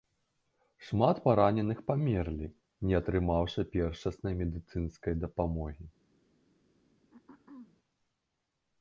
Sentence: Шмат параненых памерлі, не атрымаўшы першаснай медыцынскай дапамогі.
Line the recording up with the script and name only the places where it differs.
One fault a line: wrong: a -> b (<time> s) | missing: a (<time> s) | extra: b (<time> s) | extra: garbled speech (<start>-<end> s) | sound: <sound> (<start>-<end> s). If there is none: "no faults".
sound: throat clearing (7.1-7.8 s)